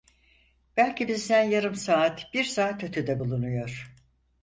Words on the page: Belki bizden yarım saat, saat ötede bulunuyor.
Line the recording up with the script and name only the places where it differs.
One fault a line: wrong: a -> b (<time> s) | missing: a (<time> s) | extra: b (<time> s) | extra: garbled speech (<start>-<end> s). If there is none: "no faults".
extra: bir (2.3 s)